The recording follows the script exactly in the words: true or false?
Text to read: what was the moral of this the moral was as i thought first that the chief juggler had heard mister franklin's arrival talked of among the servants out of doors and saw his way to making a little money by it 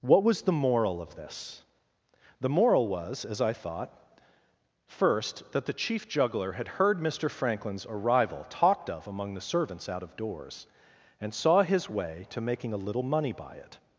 true